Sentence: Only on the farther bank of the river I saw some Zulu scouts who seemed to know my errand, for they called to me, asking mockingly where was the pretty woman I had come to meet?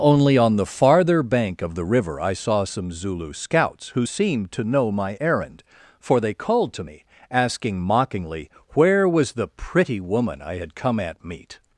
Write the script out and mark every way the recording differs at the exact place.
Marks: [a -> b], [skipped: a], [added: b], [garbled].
Only on the farther bank of the river I saw some Zulu scouts who seemed to know my errand, for they called to me, asking mockingly where was the pretty woman I had come [to -> at] meet?